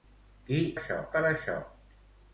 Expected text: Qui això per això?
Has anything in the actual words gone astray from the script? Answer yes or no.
no